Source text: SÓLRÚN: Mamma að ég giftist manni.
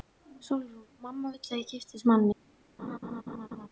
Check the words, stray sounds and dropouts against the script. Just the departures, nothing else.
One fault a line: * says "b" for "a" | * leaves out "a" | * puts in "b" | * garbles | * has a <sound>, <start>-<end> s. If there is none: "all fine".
* puts in "vill"
* has a laugh, 2.8-3.7 s